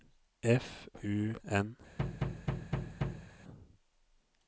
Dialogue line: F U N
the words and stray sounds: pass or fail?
fail